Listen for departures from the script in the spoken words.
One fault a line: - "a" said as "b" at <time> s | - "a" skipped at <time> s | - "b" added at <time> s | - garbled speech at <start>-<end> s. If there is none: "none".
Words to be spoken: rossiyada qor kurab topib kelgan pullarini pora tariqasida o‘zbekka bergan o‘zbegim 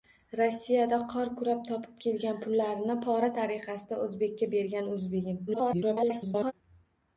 - garbled speech at 5.5-6.5 s